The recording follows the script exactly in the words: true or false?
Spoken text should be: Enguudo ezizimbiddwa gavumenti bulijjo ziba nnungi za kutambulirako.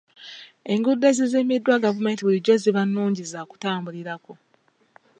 true